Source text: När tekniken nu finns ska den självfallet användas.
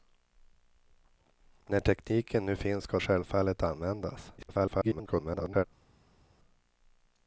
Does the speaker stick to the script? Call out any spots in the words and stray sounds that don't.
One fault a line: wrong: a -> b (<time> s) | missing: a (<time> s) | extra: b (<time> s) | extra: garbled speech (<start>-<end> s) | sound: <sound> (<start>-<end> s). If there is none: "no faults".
missing: den (3.0 s)
extra: garbled speech (4.4-5.6 s)